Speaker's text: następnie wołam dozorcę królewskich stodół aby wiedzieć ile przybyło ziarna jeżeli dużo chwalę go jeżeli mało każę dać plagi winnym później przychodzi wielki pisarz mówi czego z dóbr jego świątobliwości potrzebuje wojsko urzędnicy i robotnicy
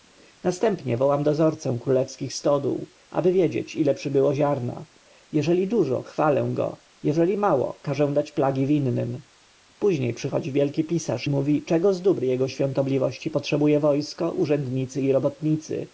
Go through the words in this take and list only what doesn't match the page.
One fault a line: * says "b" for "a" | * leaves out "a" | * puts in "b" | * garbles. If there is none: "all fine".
all fine